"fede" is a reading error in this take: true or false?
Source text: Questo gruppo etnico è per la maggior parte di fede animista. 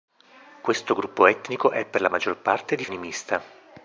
true